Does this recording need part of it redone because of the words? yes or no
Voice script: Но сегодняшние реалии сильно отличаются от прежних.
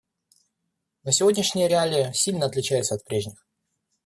no